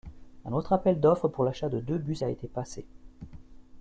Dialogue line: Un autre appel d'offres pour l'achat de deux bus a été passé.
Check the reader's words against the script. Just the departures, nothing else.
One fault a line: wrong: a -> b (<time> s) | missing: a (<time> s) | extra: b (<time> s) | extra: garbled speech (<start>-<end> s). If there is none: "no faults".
no faults